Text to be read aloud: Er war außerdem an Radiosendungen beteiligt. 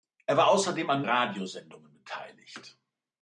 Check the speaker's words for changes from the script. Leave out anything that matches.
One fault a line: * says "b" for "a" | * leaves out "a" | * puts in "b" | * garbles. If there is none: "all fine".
all fine